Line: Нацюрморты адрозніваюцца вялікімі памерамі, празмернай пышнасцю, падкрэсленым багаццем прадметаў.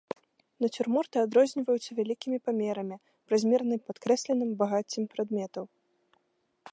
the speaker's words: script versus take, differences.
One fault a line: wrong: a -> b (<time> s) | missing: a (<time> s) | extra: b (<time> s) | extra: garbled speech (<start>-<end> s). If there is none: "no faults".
missing: пышнасцю (3.8 s)